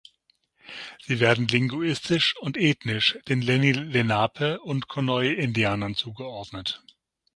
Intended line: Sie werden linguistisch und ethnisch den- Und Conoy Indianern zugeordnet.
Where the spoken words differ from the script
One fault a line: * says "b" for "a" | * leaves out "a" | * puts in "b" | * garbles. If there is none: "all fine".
* puts in "Lenni Lenape"